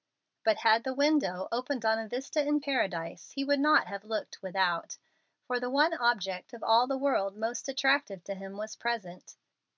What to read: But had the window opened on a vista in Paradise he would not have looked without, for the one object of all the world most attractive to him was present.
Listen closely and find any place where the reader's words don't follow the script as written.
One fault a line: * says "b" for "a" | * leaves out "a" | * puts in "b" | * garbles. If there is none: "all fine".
all fine